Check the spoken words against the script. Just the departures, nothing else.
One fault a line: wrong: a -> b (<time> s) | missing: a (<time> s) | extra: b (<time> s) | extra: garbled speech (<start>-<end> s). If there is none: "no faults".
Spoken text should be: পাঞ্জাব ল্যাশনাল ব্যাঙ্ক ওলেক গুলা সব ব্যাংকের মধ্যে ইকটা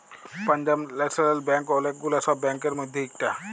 no faults